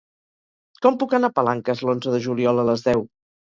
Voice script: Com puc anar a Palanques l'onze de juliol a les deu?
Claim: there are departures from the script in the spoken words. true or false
false